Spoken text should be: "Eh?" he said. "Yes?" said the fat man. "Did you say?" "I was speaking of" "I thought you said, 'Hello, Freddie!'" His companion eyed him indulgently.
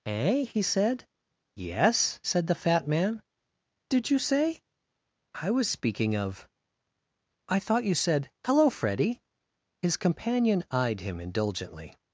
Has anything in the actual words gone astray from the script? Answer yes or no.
no